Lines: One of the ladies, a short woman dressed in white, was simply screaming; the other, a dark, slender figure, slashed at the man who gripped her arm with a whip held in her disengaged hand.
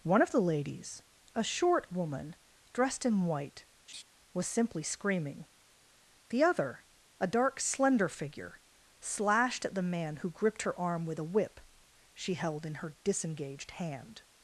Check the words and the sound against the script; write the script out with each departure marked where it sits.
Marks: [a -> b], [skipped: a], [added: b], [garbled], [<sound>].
One of the ladies, a short woman dressed in white, [laugh] was simply screaming; the other, a dark, slender figure, slashed at the man who gripped her arm with a whip [added: she] held in her disengaged hand.